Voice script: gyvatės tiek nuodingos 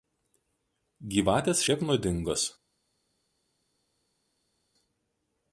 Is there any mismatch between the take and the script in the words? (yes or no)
no